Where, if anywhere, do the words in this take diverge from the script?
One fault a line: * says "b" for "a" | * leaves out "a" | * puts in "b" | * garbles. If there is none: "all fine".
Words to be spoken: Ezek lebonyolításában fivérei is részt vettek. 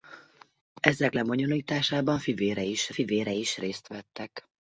* puts in "fivérei is"